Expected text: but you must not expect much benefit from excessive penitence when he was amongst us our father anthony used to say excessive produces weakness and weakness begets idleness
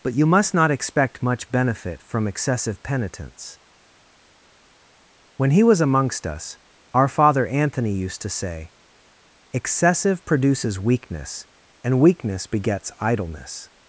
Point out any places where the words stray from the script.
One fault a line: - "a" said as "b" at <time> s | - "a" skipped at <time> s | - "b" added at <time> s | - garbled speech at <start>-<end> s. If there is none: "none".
none